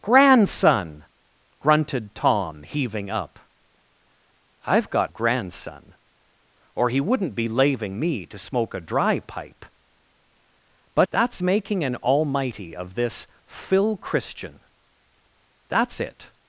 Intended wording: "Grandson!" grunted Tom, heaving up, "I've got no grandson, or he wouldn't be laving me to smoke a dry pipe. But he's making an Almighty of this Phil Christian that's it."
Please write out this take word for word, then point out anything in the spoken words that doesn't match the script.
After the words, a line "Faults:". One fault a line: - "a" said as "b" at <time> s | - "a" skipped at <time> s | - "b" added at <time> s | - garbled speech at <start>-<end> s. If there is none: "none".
"Grandson!" grunted Tom, heaving up, "I've got grandson, or he wouldn't be laving me to smoke a dry pipe. But that's making an Almighty of this Phil Christian that's it."
Faults:
- "no" skipped at 5.1 s
- "he's" said as "that's" at 11.1 s